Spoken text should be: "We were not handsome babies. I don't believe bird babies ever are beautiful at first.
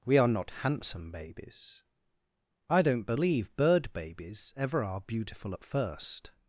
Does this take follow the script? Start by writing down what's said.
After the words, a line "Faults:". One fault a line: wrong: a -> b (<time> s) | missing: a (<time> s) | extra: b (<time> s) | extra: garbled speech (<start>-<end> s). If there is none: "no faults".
"We are not handsome babies. I don't believe bird babies ever are beautiful at first.
Faults:
wrong: were -> are (0.2 s)